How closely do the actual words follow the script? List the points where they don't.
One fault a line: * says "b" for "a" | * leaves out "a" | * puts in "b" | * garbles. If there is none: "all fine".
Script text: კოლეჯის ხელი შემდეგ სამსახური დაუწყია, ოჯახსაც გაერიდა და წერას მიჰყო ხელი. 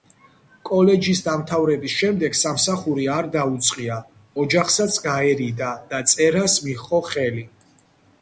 * says "დამთავრების" for "ხელი"
* puts in "არ"